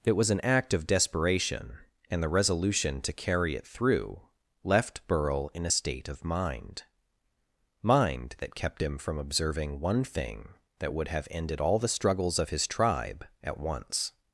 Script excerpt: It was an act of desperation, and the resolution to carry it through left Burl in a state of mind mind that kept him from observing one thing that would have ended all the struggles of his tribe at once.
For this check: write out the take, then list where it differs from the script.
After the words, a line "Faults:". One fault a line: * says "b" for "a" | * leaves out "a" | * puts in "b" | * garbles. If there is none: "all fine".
It was an act of desperation, and the resolution to carry it through left Burl in a state of mind mind that kept him from observing one thing that would have ended all the struggles of his tribe at once.
Faults:
all fine